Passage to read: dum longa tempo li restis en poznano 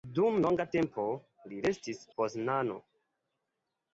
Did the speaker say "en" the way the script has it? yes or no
no